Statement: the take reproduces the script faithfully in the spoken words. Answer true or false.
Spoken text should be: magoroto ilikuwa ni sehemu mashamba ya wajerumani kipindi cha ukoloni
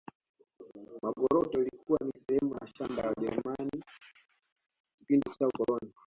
true